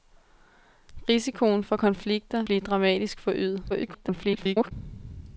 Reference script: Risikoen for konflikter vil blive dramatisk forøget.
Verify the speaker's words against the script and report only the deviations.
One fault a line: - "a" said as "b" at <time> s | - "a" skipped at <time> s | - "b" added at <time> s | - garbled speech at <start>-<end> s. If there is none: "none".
- "vil" skipped at 2.4 s
- garbled speech at 3.7-4.7 s